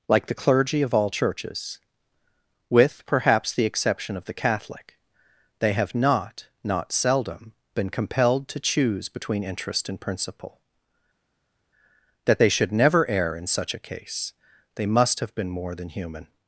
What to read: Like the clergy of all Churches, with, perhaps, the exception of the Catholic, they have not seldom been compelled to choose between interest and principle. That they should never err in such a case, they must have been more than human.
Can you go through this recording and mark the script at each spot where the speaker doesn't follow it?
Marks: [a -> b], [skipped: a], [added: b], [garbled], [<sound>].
Like the clergy of all Churches, with, perhaps, the exception of the Catholic, they have not [added: not] seldom been compelled to choose between interest and principle. That they should never err in such a case, they must have been more than human.